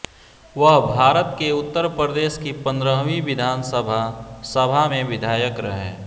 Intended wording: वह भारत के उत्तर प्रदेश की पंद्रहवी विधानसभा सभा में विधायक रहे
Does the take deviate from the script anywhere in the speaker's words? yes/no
no